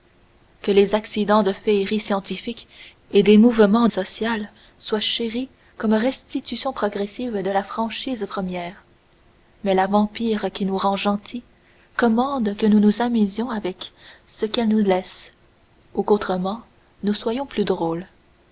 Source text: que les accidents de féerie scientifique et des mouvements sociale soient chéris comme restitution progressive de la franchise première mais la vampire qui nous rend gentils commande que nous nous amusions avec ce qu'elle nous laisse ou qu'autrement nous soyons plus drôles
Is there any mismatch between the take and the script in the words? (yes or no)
no